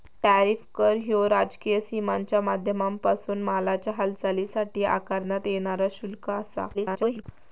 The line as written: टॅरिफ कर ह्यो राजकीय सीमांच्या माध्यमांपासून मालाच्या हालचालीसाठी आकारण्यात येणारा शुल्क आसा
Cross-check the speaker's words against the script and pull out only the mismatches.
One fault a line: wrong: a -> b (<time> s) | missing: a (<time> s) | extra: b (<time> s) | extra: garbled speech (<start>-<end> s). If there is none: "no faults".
extra: garbled speech (6.7-7.2 s)